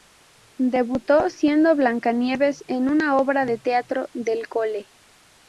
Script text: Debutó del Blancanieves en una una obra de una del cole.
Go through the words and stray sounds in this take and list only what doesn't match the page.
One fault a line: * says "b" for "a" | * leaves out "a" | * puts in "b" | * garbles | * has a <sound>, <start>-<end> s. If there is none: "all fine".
* says "siendo" for "del"
* leaves out "una"
* says "teatro" for "una"